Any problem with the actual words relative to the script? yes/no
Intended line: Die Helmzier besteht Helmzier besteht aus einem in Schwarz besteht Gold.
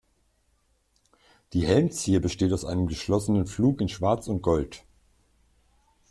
yes